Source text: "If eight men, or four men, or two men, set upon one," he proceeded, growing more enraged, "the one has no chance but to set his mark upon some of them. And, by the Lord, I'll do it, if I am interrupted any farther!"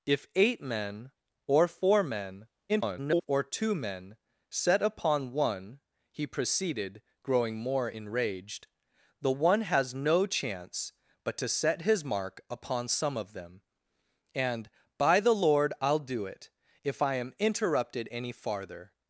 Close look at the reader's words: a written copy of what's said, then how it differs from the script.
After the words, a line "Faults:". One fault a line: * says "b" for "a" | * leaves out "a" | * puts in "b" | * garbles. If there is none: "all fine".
"If eight men, or four men, [garbled] or two men, set upon one," he proceeded, growing more enraged, "the one has no chance but to set his mark upon some of them. And, by the Lord, I'll do it, if I am interrupted any farther!"
Faults:
* garbles